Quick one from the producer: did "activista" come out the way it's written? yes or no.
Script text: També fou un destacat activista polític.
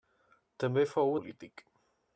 no